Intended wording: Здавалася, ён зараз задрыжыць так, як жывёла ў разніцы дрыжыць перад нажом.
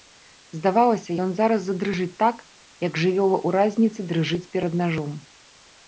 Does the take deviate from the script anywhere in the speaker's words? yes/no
no